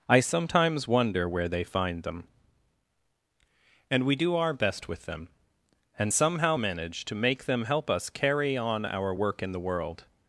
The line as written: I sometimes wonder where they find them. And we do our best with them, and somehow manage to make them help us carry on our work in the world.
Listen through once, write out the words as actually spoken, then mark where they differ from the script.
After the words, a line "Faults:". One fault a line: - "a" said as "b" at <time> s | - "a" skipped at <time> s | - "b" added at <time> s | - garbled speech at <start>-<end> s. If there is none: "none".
I sometimes wonder where they find them. And we do our best with them, and somehow manage to make them help us carry on our work in the world.
Faults:
none